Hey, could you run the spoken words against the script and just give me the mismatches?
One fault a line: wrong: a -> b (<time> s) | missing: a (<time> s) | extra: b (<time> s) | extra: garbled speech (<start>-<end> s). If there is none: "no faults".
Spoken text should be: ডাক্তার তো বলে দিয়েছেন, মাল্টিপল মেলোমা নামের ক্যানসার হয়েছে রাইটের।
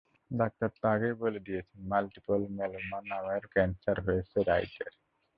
extra: আগেই (0.9 s)